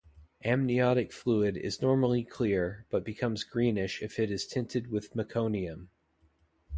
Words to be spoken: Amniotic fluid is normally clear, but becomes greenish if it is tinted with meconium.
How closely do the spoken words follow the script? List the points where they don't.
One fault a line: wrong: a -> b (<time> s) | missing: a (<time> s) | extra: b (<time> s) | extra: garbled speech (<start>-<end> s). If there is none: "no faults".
no faults